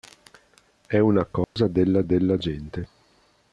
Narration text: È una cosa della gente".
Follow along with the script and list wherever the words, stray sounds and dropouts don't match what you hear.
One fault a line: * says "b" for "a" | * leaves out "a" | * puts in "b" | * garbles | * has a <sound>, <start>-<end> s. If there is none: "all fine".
* has a dropout, 1.4-1.6 s
* puts in "della"